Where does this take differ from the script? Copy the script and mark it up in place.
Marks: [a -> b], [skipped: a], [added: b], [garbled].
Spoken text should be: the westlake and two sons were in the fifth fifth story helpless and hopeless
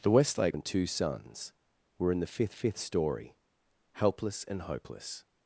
the westlake and two sons were in the fifth fifth story helpless and hopeless